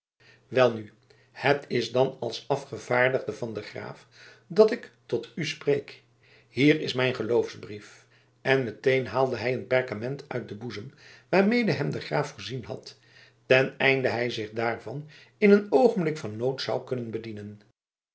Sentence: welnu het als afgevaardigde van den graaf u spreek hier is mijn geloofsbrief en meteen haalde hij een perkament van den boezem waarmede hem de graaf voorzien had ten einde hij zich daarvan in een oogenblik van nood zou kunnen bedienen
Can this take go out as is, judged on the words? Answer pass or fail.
fail